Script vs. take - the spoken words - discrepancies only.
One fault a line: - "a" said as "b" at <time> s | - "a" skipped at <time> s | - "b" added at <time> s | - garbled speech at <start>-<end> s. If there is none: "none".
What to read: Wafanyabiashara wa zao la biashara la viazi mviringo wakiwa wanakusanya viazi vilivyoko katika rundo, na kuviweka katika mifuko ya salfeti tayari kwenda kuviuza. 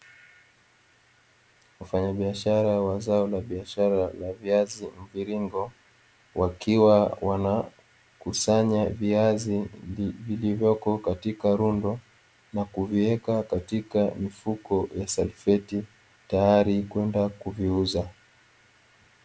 none